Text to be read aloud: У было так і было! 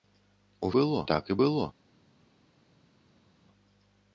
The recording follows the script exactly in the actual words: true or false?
true